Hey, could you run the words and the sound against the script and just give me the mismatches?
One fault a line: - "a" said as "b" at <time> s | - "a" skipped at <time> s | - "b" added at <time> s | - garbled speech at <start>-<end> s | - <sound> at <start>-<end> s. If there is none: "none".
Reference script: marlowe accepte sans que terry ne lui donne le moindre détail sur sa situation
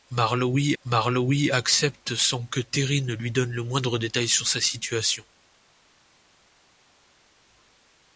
- "marlowe" added at 0.8 s